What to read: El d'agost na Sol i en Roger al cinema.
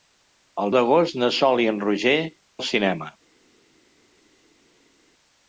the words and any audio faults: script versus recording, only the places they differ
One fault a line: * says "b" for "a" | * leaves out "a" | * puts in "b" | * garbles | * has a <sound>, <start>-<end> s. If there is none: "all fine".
all fine